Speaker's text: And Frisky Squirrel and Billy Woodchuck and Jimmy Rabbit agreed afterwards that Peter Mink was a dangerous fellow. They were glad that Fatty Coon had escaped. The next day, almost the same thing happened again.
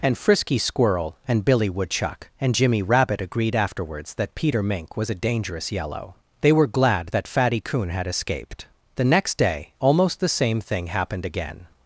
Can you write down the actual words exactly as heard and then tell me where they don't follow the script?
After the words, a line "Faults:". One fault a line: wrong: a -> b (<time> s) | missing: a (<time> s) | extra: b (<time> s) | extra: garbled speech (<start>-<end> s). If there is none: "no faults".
And Frisky Squirrel and Billy Woodchuck and Jimmy Rabbit agreed afterwards that Peter Mink was a dangerous yellow. They were glad that Fatty Coon had escaped. The next day, almost the same thing happened again.
Faults:
wrong: fellow -> yellow (5.7 s)